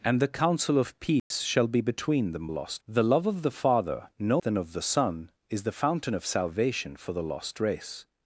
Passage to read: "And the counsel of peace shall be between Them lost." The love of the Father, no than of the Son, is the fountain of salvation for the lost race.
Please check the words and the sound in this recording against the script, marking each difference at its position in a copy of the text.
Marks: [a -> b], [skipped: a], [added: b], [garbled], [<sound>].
"And the counsel of peace [dropout] shall be between Them lost." The love of the Father, no than of the Son, is the fountain of salvation for the lost race.